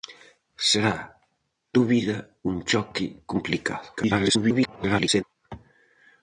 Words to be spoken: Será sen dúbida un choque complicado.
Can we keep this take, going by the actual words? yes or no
no